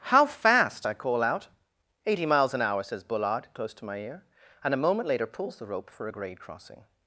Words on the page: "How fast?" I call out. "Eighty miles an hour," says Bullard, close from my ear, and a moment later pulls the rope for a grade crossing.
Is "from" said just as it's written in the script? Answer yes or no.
no